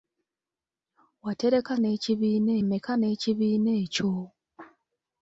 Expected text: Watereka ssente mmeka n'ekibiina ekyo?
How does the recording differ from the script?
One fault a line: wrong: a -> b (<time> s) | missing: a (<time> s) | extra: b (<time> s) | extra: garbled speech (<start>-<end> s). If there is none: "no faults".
wrong: ssente -> n'ekibiina (1.8 s)